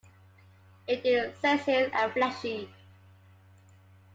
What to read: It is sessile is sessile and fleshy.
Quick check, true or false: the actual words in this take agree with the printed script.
false